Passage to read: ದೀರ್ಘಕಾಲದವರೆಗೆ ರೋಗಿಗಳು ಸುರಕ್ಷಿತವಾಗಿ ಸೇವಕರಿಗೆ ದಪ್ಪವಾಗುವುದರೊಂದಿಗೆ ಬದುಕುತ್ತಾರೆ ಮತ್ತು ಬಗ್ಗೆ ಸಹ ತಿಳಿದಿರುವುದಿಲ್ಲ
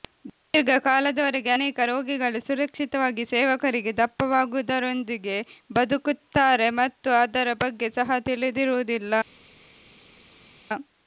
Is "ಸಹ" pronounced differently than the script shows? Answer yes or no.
no